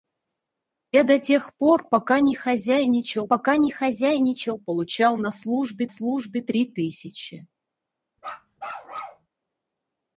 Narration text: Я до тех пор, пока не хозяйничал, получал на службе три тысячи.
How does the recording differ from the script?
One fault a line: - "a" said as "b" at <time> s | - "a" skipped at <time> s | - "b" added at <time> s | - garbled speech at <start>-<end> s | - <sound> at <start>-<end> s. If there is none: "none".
- "пока не хозяйничал" added at 3.3 s
- "службе" added at 5.9 s
- bark at 8.2-9.3 s